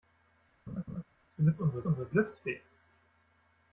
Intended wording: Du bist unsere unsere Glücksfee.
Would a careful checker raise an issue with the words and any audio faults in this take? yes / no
yes